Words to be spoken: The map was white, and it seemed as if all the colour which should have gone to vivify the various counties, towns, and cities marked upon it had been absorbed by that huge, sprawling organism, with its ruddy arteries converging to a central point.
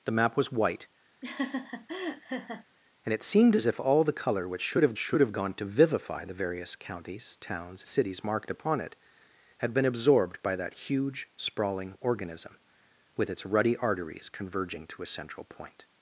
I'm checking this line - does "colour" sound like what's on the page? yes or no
yes